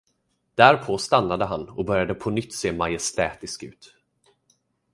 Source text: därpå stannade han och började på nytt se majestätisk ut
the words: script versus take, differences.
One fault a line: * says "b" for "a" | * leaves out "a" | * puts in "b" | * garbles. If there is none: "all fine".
all fine